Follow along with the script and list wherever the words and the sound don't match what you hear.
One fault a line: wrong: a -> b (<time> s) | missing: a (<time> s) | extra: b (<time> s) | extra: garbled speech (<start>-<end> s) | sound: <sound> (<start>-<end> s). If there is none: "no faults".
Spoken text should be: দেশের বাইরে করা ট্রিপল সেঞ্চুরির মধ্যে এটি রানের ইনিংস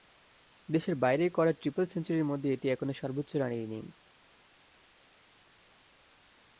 extra: এখনো সর্বোচ্চ (2.7 s)